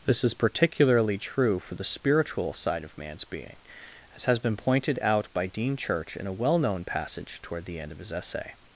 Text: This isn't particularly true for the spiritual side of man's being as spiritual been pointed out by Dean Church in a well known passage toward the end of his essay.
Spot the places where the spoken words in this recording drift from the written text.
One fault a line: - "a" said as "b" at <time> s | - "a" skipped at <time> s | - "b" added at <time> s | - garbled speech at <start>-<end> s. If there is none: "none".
- "isn't" said as "is" at 0.2 s
- "spiritual" said as "has" at 4.2 s